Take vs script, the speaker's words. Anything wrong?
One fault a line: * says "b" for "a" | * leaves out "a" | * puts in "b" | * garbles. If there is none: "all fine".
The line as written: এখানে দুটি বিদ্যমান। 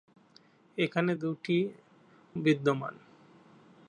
all fine